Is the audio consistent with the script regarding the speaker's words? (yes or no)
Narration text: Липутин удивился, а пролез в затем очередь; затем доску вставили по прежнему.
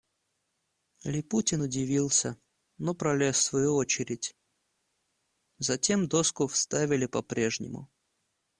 no